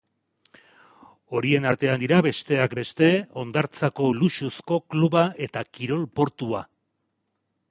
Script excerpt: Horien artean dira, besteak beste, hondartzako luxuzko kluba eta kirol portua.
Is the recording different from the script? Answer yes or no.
no